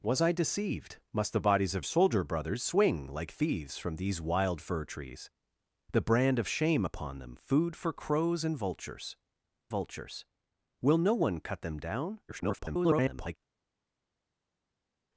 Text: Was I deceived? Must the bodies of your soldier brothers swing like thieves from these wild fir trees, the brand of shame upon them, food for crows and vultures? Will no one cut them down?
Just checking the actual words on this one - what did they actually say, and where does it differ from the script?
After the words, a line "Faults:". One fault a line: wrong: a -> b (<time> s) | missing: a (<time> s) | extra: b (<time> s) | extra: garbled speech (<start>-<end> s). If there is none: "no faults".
Was I deceived? Must the bodies of soldier brothers swing like thieves from these wild fir trees, the brand of shame upon them, food for crows and vultures vultures? Will no one cut them down? [garbled]
Faults:
missing: your (1.9 s)
extra: vultures (9.7 s)
extra: garbled speech (12.3-13.4 s)